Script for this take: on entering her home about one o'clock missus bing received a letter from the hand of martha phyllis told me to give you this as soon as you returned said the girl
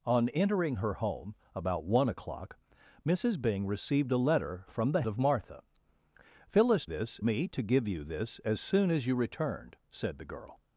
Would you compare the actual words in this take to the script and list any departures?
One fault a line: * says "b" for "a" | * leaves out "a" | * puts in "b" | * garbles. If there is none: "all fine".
* leaves out "hand"
* says "this" for "told"